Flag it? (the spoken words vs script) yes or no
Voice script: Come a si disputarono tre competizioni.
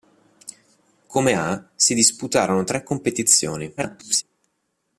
yes